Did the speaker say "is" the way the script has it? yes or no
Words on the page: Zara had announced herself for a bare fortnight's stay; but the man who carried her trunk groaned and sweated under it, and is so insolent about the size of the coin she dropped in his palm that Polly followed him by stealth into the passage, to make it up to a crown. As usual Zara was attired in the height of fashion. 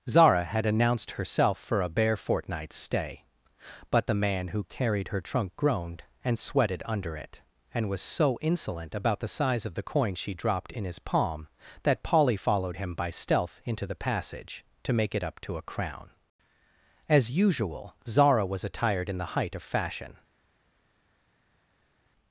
no